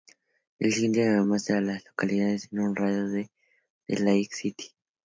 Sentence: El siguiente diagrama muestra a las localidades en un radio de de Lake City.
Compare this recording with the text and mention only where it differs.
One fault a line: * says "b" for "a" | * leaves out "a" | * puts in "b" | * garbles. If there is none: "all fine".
all fine